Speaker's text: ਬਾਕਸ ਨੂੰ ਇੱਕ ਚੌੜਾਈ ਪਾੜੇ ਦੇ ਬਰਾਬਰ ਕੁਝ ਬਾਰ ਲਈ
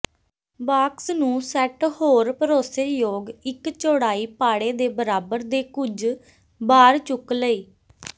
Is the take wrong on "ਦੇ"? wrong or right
right